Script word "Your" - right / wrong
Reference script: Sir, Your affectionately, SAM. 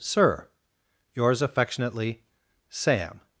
wrong